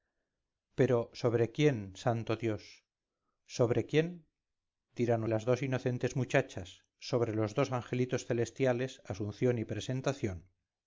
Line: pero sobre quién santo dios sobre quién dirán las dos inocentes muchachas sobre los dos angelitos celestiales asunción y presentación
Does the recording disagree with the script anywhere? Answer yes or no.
no